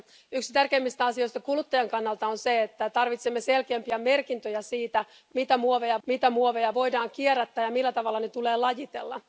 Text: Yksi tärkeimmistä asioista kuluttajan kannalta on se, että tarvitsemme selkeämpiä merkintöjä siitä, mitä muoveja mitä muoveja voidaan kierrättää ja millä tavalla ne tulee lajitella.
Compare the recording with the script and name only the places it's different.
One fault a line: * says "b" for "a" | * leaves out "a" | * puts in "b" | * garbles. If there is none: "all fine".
all fine